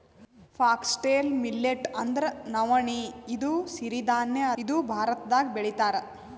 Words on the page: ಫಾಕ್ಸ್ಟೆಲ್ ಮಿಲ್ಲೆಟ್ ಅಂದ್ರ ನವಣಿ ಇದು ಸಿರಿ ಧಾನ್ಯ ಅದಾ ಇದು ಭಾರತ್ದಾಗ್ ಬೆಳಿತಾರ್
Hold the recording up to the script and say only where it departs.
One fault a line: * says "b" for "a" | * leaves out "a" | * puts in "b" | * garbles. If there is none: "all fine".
* leaves out "ಅದಾ"